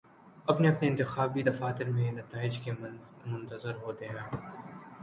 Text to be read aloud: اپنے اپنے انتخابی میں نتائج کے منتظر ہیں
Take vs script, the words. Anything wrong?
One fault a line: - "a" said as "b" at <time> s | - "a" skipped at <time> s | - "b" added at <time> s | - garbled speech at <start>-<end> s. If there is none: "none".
- "دفاتر" added at 1.4 s
- "ہوتے" added at 3.8 s